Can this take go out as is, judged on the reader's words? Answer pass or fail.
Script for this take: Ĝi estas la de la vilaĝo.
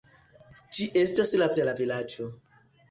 pass